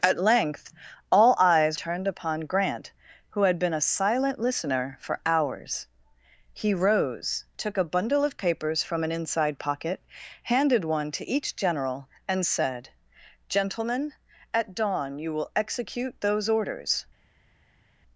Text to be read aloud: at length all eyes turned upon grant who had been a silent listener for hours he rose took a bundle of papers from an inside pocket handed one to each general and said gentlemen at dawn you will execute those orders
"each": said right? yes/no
yes